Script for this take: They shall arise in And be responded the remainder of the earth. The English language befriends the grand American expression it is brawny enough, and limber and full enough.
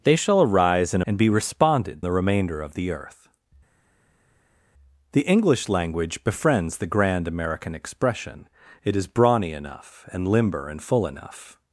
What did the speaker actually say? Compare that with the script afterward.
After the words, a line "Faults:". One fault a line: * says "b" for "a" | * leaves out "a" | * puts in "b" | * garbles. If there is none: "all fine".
They shall arise in And be responded the remainder of the earth. The English language befriends the grand American expression it is brawny enough, and limber and full enough.
Faults:
all fine